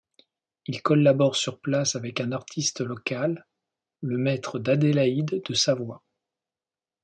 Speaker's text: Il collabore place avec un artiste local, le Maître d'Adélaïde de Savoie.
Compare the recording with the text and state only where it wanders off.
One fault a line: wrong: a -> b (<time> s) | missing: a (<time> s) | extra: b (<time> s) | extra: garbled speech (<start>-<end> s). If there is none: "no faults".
extra: sur (1.4 s)